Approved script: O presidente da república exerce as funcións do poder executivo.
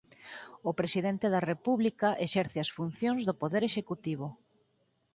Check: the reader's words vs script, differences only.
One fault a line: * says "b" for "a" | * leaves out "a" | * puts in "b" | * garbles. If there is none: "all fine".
all fine